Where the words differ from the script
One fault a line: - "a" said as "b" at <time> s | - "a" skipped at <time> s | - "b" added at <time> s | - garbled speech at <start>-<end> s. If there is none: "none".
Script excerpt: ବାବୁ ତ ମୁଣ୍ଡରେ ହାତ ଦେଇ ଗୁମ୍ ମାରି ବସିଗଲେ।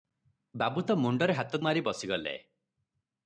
- "ଦେଇ ଗୁମ୍" skipped at 1.6 s